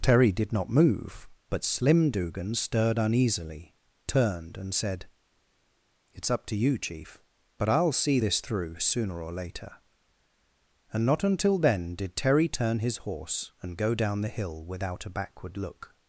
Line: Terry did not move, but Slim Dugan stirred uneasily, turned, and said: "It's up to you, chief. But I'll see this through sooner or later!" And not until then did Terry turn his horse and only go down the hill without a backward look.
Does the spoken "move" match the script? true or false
true